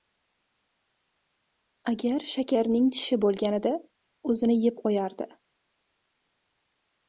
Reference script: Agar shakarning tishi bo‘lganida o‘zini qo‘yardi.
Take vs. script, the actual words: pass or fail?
fail